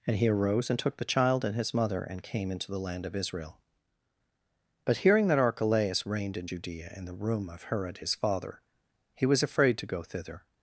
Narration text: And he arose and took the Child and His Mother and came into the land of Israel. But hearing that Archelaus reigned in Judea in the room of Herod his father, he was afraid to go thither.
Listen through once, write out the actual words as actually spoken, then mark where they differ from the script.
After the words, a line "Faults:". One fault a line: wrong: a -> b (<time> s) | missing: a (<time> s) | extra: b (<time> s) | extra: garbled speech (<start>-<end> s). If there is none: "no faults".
And he arose and took the Child and His Mother and came into the land of Israel. But hearing that Archelaus reigned in Judea in the room of Herod his father, he was afraid to go thither.
Faults:
no faults